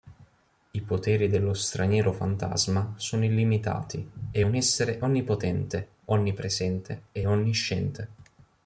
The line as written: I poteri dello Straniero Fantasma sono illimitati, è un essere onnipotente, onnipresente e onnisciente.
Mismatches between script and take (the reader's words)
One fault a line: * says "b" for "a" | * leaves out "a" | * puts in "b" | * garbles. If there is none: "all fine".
all fine